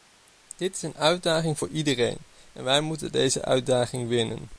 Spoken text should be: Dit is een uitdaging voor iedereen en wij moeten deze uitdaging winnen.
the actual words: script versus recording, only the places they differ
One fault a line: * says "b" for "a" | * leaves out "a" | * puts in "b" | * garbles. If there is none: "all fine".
all fine